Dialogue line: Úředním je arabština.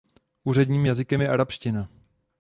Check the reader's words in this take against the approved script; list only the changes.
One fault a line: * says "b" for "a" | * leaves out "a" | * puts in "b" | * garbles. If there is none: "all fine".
* puts in "jazykem"